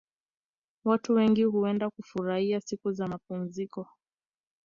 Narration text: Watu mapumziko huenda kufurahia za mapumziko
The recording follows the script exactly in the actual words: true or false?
false